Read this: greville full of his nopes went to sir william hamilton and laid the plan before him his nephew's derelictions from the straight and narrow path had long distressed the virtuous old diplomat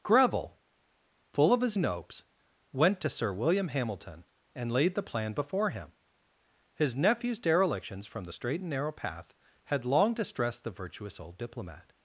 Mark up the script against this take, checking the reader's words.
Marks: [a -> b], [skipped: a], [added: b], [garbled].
greville full of his nopes went to sir william hamilton and laid the plan before him his nephew's derelictions from the straight and narrow path had long distressed the virtuous old diplomat